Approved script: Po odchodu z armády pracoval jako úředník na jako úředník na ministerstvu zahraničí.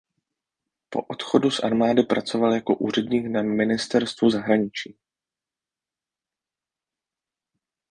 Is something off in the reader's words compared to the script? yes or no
yes